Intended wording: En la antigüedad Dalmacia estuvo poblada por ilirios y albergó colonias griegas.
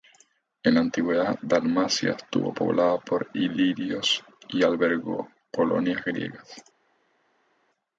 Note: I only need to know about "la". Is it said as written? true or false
true